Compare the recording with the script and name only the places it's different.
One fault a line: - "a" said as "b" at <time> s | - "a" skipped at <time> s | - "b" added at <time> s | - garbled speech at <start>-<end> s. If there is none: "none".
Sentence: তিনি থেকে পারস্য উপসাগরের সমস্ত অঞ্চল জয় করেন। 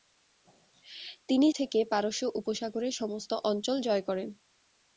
none